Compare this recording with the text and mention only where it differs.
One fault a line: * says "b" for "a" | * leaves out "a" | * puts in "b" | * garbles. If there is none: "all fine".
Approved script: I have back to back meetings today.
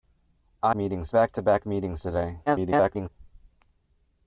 * says "meetings" for "have"
* garbles